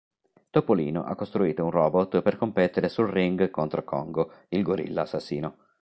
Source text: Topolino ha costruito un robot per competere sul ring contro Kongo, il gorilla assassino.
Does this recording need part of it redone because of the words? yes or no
no